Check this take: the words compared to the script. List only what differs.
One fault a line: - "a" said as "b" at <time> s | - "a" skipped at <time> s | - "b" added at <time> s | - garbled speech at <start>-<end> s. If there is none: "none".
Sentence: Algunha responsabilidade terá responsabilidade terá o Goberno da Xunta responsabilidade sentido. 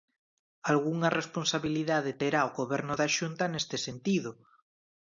- "responsabilidade terá" skipped at 2.4 s
- "responsabilidade" said as "neste" at 3.5 s